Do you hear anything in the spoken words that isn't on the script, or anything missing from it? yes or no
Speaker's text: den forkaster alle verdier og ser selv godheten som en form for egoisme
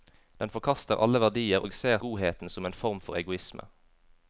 yes